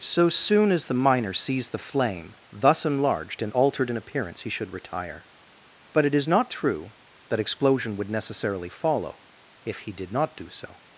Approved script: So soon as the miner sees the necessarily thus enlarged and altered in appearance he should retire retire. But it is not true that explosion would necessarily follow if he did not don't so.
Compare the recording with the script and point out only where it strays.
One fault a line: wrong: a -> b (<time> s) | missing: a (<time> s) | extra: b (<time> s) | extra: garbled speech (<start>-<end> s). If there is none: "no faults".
wrong: necessarily -> flame (1.8 s)
missing: retire (5.3 s)
wrong: don't -> do (10.4 s)